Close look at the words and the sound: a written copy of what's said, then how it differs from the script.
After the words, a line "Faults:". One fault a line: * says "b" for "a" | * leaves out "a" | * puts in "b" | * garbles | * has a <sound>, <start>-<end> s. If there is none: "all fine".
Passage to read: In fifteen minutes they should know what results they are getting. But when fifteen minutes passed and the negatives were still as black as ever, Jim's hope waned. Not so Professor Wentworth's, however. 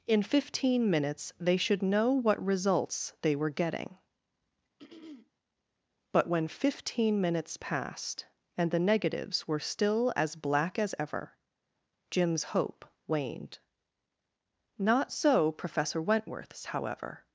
In fifteen minutes they should know what results they were getting. But when fifteen minutes passed and the negatives were still as black as ever, Jim's hope waned. Not so Professor Wentworth's, however.
Faults:
* says "were" for "are"
* has a throat clearing, 4.8-5.3 s